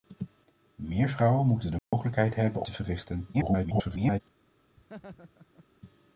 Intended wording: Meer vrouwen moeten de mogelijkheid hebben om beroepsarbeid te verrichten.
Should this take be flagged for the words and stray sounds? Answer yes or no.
yes